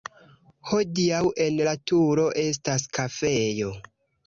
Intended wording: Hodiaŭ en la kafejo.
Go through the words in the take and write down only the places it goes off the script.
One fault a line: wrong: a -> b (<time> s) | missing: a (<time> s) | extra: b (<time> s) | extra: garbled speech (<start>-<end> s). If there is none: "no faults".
extra: turo estas (1.9 s)